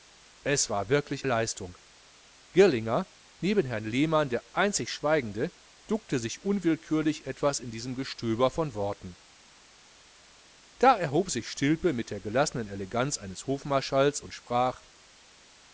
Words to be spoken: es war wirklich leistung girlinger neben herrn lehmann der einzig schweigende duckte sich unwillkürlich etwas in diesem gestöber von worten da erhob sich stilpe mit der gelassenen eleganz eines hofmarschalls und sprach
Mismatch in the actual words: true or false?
false